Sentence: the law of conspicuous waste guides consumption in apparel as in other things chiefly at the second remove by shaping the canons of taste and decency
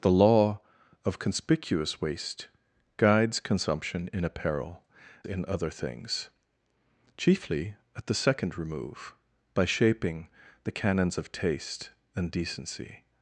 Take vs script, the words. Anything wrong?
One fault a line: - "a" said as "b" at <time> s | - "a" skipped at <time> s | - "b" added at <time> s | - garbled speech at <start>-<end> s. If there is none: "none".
- "as" skipped at 4.8 s